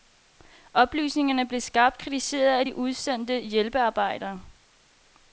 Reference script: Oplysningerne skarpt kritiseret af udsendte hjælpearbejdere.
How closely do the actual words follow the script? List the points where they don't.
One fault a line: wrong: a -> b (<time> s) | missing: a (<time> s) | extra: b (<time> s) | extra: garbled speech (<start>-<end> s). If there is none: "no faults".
extra: blev (1.5 s)
extra: de (2.6 s)